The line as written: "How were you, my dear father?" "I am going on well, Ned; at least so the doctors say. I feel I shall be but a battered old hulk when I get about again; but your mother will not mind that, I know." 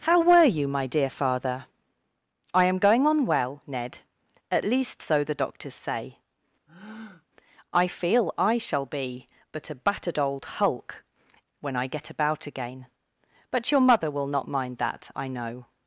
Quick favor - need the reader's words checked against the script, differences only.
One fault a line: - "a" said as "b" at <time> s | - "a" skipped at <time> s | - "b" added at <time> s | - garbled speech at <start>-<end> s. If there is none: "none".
none